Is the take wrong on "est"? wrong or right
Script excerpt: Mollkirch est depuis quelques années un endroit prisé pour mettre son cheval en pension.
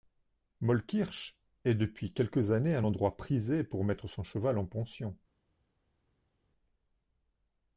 right